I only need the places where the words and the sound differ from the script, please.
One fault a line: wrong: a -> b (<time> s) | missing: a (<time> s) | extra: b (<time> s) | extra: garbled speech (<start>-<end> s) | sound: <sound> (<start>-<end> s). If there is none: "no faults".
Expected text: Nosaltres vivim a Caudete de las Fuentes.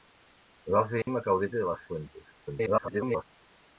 sound: dropout (1.0-1.1 s)
extra: garbled speech (2.5-3.2 s)